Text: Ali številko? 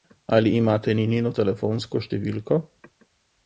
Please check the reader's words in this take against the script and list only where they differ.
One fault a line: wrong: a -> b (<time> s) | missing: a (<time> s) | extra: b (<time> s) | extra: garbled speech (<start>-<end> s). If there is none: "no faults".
extra: imate Ninino telefonsko (0.6 s)